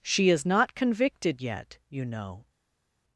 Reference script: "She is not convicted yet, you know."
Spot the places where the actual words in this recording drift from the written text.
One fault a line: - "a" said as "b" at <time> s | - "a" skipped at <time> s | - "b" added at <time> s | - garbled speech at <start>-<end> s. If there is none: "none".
none